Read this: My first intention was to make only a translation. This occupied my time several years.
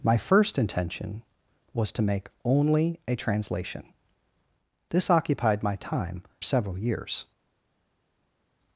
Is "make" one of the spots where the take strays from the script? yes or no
no